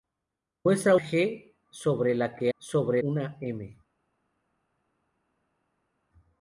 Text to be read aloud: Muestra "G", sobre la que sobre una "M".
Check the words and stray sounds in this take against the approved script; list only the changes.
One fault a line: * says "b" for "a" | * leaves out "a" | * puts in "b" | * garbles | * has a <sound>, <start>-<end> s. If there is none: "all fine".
all fine